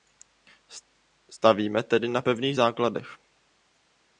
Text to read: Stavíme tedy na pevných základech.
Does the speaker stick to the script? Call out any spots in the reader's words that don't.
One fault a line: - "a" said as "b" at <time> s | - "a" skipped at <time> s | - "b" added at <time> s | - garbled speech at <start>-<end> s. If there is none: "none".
none